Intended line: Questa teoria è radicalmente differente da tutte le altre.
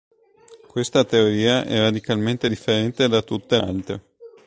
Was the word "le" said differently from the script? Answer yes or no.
yes